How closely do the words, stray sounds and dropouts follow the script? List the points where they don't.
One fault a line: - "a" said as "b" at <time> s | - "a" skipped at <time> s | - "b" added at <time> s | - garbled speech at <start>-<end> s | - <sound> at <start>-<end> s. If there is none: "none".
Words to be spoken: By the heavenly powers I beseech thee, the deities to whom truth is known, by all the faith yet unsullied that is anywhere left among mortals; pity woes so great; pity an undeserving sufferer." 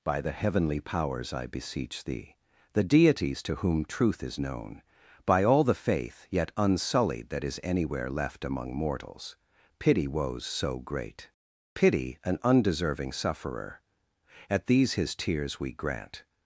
- "At these his tears we grant" added at 14.5 s